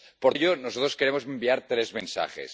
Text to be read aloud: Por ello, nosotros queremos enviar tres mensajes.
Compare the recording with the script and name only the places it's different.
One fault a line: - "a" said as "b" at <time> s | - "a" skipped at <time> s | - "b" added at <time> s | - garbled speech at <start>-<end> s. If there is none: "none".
none